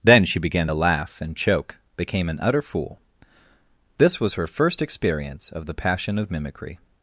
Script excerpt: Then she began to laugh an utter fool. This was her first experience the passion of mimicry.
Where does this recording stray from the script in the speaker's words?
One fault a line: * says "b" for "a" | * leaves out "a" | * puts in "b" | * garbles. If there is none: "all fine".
* puts in "and choke became"
* puts in "of"